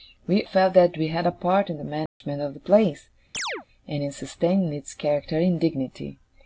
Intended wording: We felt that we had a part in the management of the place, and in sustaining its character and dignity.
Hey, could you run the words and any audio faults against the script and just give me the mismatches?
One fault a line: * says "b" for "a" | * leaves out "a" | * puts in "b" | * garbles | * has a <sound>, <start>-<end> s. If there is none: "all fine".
* has a dropout, 2.1-2.2 s
* has a chirp, 3.3-3.7 s